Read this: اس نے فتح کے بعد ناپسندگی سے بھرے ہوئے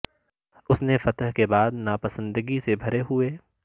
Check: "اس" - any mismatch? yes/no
no